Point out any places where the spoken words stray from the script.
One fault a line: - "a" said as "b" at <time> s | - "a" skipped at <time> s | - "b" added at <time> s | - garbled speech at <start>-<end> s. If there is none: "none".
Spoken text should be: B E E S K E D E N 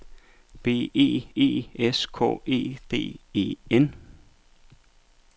none